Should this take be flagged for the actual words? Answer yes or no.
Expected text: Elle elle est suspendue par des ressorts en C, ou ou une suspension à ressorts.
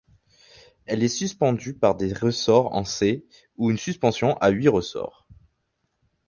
yes